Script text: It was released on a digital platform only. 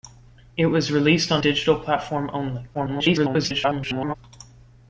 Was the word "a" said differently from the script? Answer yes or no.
yes